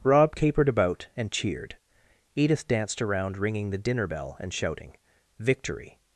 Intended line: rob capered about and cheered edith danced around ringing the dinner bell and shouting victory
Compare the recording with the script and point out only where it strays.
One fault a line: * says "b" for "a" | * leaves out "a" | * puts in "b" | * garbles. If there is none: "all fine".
all fine